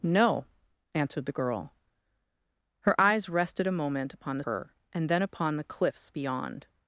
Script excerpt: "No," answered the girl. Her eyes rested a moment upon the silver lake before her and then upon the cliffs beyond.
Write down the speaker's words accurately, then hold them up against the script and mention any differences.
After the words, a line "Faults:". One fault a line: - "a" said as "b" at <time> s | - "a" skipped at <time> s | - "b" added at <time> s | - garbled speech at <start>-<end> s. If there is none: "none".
"No," answered the girl. Her eyes rested a moment upon the her and then upon the cliffs beyond.
Faults:
- "silver lake before" skipped at 4.4 s